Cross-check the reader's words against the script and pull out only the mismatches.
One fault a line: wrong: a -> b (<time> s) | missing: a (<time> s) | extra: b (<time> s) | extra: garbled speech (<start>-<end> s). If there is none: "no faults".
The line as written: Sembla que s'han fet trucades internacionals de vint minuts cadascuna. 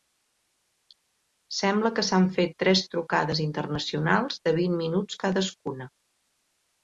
extra: tres (2.6 s)